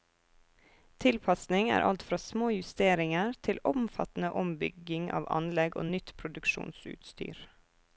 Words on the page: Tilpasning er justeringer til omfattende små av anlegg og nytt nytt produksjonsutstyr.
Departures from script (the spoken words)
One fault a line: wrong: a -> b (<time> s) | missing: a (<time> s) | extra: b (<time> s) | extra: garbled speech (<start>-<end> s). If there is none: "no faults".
extra: alt fra små (1.9 s)
wrong: små -> ombygging (4.5 s)
missing: nytt (6.1 s)